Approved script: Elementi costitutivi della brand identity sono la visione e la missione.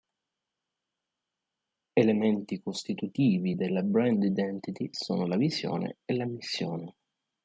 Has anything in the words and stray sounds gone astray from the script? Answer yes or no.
no